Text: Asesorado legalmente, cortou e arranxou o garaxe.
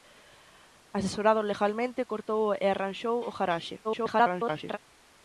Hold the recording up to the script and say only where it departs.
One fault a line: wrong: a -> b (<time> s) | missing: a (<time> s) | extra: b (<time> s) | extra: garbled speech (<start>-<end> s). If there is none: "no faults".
extra: garbled speech (3.8-4.8 s)